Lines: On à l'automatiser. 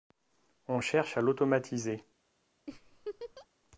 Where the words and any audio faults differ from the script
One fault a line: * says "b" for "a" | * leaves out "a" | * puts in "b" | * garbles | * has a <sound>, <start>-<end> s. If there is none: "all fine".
* puts in "cherche"
* has a laugh, 2.7-3.5 s